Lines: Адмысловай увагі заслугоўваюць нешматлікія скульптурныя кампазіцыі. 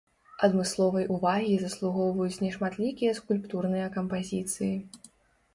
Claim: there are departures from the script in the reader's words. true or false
false